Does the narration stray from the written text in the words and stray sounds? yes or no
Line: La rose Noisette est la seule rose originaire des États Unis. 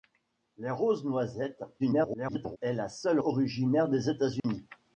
yes